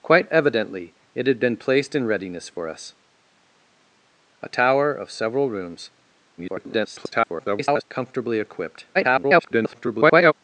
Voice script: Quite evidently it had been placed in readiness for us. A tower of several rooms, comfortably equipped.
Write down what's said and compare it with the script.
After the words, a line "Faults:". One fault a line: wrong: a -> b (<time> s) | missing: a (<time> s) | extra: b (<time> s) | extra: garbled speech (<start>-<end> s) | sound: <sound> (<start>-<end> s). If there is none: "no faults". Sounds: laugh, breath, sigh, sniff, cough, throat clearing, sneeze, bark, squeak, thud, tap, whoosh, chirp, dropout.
Quite evidently it had been placed in readiness for us. A tower of several rooms, [garbled] comfortably equipped. [garbled]
Faults:
extra: garbled speech (6.4-7.8 s)
extra: garbled speech (8.9-10.3 s)